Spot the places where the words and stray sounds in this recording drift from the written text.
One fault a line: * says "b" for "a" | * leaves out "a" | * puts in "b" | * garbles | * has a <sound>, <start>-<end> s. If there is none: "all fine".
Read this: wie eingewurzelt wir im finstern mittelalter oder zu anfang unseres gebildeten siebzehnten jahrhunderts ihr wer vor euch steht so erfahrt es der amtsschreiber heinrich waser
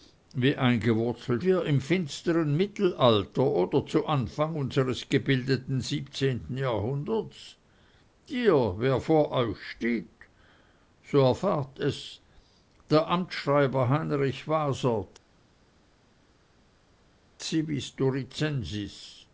all fine